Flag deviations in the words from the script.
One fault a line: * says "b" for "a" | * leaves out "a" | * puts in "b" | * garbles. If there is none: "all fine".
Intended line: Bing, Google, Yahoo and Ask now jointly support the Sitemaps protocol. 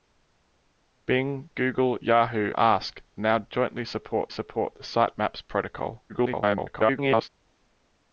* leaves out "and"
* puts in "support"
* garbles